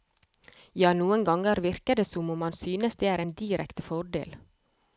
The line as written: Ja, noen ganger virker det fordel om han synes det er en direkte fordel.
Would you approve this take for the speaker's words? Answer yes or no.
no